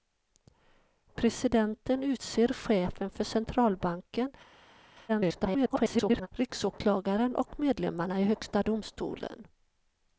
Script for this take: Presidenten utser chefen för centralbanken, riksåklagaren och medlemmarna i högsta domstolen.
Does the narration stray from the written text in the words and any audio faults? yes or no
yes